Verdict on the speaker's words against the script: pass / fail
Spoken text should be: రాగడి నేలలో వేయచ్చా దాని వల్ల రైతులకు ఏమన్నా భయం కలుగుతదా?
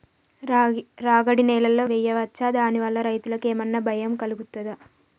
pass